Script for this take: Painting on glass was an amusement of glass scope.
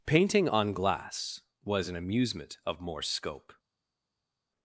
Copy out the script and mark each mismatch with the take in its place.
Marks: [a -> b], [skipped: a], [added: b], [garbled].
Painting on glass was an amusement of [glass -> more] scope.